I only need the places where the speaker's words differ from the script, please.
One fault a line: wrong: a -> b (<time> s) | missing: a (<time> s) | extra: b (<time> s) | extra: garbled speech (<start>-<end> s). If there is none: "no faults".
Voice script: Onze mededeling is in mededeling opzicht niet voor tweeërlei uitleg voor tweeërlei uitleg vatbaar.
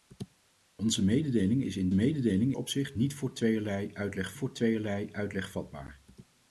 no faults